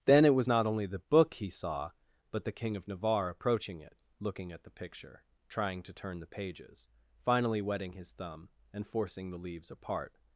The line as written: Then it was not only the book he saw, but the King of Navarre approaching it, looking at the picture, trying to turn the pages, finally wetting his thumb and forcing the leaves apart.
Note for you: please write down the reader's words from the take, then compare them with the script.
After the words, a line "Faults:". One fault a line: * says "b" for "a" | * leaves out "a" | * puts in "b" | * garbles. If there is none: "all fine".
Then it was not only the book he saw, but the King of Navarre approaching it, looking at the picture, trying to turn the pages, finally wetting his thumb and forcing the leaves apart.
Faults:
all fine